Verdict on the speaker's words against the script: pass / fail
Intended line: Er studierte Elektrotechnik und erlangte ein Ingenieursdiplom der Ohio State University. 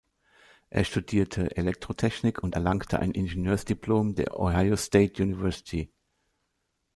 pass